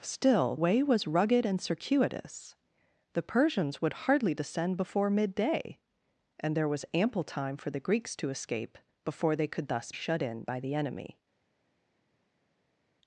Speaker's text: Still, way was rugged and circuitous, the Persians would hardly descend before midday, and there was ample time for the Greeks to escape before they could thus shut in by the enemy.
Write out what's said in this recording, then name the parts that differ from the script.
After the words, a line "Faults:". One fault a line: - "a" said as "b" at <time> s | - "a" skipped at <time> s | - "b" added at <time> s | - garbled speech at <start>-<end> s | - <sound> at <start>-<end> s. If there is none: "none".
Still, way was rugged and circuitous, the Persians would hardly descend before midday, and there was ample time for the Greeks to escape before they could thus shut in by the enemy.
Faults:
none